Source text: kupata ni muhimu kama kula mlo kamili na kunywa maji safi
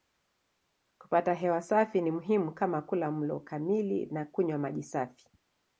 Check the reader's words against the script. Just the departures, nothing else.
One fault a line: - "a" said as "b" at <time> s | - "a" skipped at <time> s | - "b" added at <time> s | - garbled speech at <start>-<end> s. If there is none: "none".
- "hewa safi" added at 1.3 s